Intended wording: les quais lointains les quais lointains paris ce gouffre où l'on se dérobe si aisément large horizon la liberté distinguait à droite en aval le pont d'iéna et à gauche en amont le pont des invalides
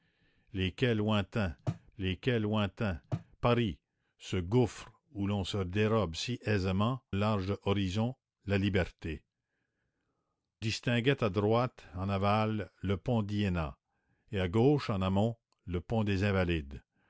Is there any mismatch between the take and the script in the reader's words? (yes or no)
no